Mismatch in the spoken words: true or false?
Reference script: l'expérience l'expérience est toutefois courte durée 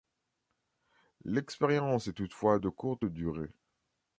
true